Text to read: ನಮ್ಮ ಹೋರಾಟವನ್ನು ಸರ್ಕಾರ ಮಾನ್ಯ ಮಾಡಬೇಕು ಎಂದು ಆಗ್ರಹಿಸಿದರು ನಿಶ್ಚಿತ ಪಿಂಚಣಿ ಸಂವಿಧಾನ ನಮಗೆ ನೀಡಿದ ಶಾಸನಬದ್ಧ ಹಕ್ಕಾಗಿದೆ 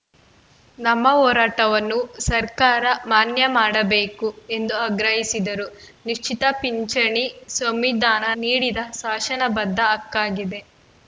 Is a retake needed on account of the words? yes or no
yes